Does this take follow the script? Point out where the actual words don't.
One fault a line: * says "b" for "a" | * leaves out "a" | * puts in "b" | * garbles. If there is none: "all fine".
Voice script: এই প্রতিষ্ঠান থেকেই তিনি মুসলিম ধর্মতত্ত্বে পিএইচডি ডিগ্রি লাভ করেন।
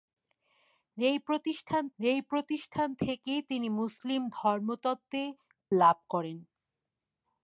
* puts in "এই প্রতিষ্ঠান"
* leaves out "পিএইচডি ডিগ্রি"